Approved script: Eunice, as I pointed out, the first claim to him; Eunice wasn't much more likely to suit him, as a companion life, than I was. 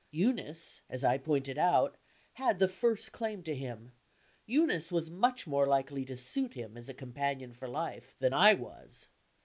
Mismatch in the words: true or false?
true